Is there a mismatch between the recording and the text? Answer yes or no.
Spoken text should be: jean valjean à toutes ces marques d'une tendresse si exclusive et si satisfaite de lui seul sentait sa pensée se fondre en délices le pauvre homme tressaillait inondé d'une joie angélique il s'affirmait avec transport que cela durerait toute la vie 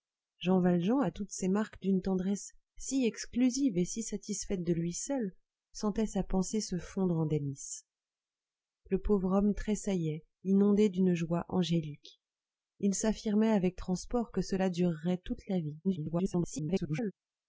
yes